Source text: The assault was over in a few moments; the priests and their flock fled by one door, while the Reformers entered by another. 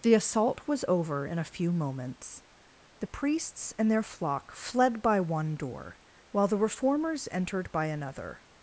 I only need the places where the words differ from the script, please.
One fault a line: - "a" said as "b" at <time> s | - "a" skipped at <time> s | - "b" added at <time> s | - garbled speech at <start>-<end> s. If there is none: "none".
none